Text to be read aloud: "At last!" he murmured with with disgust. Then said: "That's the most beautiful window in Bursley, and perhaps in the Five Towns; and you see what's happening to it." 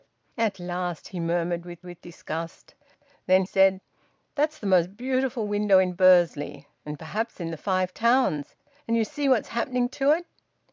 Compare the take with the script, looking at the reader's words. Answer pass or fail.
pass